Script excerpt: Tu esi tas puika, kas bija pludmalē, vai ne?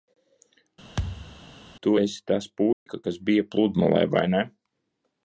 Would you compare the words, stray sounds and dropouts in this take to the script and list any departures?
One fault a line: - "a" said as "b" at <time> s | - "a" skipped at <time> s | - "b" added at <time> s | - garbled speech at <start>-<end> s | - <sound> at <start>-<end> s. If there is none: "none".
- thud at 1.0-1.4 s
- dropout at 2.7-2.9 s